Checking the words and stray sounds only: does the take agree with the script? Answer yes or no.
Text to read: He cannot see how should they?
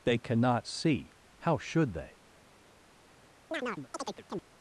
no